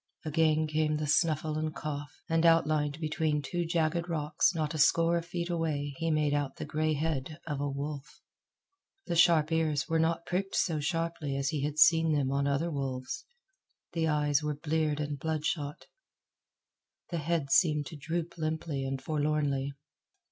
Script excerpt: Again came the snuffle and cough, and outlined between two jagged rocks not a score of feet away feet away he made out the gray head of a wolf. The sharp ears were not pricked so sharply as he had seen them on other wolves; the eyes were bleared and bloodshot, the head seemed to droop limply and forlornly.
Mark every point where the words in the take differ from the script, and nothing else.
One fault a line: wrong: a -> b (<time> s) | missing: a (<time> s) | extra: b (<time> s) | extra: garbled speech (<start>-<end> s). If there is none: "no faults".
missing: feet away (5.9 s)